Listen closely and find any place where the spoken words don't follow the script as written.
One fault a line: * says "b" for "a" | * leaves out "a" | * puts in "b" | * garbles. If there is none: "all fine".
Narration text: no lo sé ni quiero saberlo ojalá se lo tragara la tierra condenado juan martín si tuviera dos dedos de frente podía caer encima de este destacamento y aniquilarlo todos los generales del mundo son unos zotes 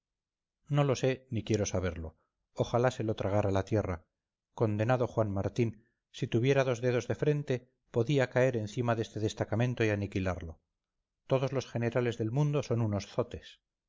all fine